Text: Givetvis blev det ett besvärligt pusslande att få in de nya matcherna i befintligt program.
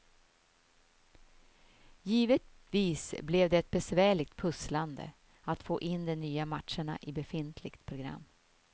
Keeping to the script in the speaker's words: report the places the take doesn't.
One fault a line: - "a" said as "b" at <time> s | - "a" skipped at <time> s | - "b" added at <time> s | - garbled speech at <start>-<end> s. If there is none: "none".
none